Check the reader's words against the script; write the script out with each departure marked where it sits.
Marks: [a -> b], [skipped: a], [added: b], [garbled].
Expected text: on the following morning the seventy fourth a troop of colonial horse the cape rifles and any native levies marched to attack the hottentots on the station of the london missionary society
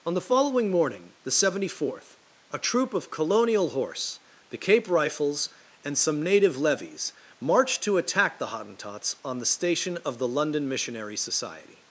on the following morning the seventy fourth a troop of colonial horse the cape rifles and [any -> some] native levies marched to attack the hottentots on the station of the london missionary society